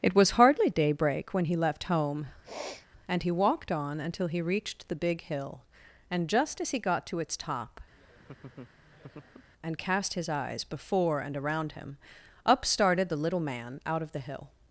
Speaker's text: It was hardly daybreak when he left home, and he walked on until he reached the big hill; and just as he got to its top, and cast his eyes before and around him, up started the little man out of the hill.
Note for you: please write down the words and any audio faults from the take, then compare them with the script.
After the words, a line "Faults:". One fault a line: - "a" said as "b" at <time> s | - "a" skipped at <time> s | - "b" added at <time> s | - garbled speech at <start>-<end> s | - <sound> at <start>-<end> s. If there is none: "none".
It was hardly daybreak when he left home, and he walked on until he reached the big hill; and just as he got to its top, and cast his eyes before and around him, up started the little man out of the hill.
Faults:
- sniff at 2.4-2.9 s
- laugh at 7.9-9.5 s